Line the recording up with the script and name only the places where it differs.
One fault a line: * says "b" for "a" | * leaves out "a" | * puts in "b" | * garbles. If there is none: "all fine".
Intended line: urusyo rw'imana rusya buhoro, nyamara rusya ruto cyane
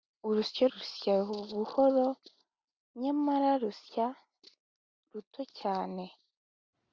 * leaves out "rw'imana"